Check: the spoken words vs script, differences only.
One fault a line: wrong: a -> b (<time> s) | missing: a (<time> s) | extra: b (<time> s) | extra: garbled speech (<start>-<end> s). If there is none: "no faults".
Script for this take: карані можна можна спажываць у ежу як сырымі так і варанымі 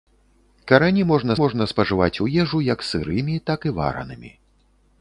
no faults